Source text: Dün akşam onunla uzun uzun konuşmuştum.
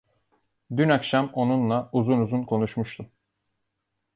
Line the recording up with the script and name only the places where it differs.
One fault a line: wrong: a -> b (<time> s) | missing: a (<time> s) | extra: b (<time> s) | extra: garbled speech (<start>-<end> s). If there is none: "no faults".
no faults